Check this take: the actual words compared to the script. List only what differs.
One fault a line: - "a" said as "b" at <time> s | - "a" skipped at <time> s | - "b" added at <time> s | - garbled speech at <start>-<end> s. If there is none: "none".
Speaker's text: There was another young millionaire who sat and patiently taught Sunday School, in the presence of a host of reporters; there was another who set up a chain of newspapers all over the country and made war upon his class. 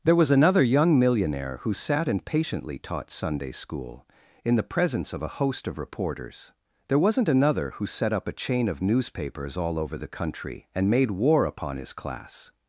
- "was" said as "wasn't" at 7.0 s